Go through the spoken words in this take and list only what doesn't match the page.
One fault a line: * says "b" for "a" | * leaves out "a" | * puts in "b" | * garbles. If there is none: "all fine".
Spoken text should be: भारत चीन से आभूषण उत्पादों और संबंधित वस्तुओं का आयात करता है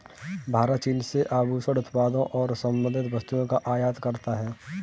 all fine